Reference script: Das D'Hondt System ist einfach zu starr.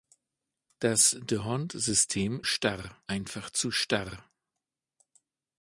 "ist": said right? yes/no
no